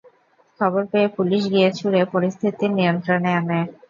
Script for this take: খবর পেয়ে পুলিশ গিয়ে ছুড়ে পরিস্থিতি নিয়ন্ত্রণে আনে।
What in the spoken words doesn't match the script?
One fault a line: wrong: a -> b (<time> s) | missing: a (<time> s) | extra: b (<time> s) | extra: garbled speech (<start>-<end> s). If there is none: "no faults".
no faults